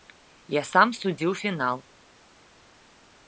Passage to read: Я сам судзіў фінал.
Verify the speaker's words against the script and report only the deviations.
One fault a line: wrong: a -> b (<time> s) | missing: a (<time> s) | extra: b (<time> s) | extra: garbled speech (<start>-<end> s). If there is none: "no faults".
no faults